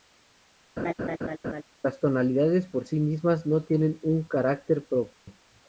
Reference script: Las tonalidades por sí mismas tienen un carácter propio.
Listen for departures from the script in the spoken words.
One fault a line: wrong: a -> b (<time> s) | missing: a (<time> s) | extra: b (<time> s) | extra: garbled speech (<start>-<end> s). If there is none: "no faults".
extra: no (3.5 s)